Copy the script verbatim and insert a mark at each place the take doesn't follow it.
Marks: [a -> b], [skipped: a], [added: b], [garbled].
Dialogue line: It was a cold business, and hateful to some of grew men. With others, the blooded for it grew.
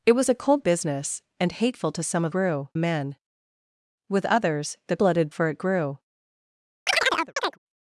It was a cold business, and hateful to some of grew men. With others, the blooded for it grew.